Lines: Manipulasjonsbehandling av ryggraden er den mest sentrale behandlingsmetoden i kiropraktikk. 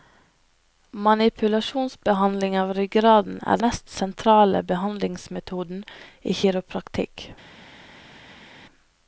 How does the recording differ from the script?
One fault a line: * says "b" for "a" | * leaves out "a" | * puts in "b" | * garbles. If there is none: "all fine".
* leaves out "den"